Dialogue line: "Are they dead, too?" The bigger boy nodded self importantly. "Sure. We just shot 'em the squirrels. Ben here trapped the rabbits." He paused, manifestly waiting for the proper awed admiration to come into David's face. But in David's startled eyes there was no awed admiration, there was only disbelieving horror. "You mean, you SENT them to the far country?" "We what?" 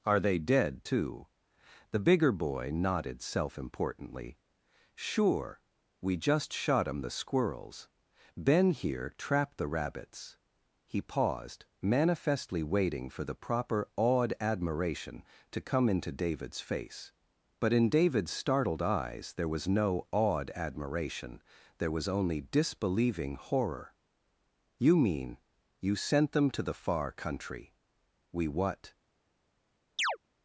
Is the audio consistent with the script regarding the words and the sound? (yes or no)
no